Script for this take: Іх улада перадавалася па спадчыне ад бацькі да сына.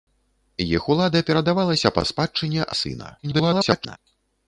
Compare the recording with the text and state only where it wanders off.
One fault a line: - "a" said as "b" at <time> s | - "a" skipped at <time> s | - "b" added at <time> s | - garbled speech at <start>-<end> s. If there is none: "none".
- "ад бацькі" skipped at 2.6 s
- garbled speech at 3.2-4.0 s